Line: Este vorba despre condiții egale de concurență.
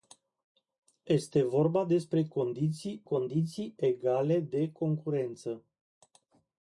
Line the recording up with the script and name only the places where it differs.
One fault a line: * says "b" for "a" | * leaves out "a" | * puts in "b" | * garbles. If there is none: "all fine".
* puts in "condiții"